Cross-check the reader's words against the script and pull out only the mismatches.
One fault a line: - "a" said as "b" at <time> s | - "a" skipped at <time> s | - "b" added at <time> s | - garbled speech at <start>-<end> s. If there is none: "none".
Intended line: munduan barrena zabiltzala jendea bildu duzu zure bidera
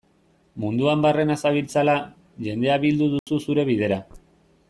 none